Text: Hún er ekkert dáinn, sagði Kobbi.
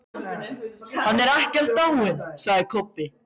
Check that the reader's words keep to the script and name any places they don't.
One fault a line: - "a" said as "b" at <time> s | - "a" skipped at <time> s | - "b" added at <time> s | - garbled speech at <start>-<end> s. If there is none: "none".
- "Hún" said as "Hann" at 1.1 s